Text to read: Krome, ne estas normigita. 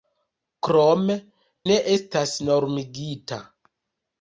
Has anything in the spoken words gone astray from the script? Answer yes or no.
no